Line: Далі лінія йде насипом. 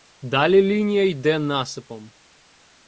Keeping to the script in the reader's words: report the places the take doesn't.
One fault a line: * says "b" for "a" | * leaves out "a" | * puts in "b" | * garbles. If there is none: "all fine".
all fine